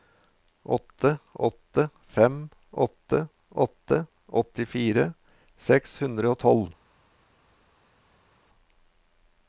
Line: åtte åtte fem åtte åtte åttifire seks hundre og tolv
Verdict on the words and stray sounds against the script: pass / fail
pass